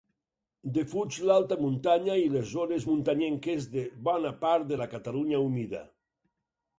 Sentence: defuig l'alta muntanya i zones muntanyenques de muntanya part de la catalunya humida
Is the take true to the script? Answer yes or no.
no